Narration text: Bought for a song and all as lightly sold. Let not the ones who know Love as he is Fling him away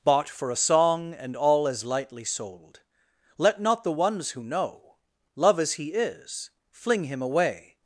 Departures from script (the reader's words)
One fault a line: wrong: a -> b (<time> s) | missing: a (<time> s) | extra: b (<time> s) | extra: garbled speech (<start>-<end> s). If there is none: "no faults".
no faults